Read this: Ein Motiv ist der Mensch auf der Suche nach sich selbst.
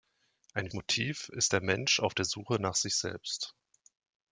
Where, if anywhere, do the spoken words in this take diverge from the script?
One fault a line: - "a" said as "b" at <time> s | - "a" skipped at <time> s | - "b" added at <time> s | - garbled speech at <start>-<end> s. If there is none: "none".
none